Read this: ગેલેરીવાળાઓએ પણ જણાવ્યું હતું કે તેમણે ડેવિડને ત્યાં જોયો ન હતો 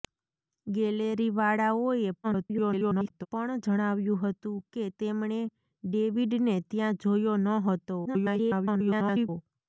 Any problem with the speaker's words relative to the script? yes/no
yes